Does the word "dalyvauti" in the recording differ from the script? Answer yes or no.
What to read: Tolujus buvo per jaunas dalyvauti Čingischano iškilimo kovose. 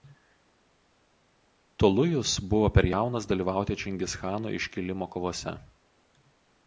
no